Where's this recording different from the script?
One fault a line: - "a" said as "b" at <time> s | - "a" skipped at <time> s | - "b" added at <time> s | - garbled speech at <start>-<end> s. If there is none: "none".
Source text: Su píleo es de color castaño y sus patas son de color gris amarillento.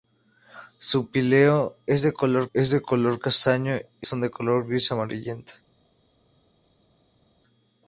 - "es de color" added at 2.5 s
- "sus patas" skipped at 4.1 s